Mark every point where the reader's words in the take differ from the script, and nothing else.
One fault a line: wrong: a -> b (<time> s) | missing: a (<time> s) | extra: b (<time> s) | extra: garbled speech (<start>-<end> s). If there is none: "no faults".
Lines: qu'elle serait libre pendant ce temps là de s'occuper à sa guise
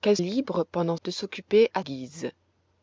missing: serait (0.2 s)
missing: ce temps là (1.0 s)
missing: sa (1.8 s)